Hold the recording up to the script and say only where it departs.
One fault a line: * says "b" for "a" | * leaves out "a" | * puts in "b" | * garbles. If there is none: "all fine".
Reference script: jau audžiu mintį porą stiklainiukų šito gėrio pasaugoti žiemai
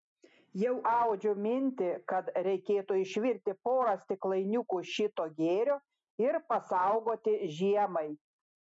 * puts in "kad reikėtų išvirti"
* puts in "ir"